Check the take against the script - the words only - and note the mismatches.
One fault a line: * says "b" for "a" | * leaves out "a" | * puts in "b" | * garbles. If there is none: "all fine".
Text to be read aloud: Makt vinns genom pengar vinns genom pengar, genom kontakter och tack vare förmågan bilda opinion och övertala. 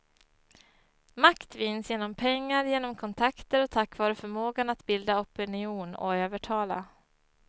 * leaves out "vinns"
* leaves out "pengar genom"
* puts in "att"